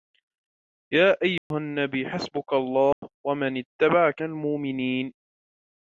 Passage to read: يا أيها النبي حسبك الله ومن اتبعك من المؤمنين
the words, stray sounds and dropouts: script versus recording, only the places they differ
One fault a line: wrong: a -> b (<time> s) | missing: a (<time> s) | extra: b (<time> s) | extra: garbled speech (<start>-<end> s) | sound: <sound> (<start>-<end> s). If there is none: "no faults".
sound: dropout (1.4-1.5 s)
sound: dropout (2.9-3.0 s)
missing: من (4.2 s)